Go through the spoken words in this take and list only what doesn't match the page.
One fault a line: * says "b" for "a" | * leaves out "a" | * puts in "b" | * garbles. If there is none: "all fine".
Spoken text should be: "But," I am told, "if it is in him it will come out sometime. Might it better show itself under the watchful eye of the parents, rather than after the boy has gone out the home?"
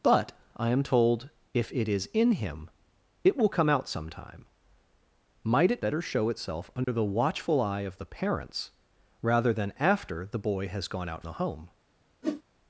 all fine